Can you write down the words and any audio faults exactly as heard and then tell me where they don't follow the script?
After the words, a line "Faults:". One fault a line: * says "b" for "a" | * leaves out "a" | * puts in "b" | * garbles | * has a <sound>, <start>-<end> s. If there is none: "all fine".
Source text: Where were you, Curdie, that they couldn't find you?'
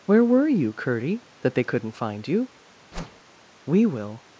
Where were you, Curdie, that they couldn't find you?' 'We will
Faults:
* has a whoosh, 2.9-3.2 s
* puts in "We will"